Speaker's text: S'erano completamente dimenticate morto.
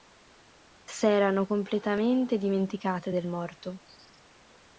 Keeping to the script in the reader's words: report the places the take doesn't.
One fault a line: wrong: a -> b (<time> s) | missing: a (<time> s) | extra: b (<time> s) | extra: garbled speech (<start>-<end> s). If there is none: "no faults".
extra: del (3.1 s)